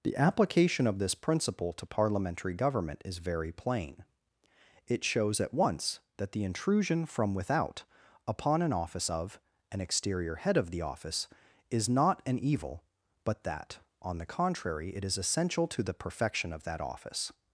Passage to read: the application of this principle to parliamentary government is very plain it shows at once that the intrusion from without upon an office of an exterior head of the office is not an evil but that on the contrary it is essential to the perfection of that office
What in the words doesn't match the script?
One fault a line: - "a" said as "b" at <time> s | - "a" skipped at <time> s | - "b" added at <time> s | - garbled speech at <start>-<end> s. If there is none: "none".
none